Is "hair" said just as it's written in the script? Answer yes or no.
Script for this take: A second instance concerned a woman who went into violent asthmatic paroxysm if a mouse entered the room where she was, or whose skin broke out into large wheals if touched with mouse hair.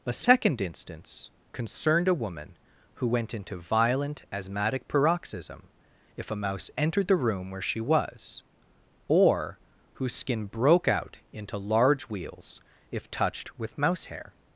yes